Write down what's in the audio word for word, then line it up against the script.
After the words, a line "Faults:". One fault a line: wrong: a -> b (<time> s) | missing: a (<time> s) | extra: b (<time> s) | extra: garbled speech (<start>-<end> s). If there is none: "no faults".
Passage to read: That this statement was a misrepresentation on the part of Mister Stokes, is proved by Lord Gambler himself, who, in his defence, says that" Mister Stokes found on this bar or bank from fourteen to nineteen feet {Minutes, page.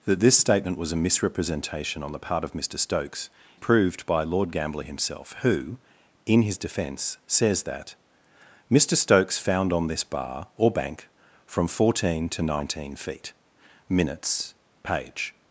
That this statement was a misrepresentation on the part of Mister Stokes, proved by Lord Gambler himself, who, in his defence, says that" Mister Stokes found on this bar or bank from fourteen to nineteen feet {Minutes, page.
Faults:
missing: is (3.3 s)